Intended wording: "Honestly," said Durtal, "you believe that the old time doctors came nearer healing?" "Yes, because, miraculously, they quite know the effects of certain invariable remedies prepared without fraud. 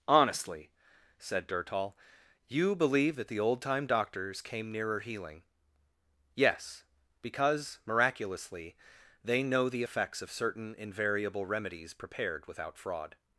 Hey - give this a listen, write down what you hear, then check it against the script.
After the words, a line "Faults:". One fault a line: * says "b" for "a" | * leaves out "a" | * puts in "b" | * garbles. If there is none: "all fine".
"Honestly," said Durtal, "you believe that the old time doctors came nearer healing?" "Yes, because, miraculously, they know the effects of certain invariable remedies prepared without fraud.
Faults:
* leaves out "quite"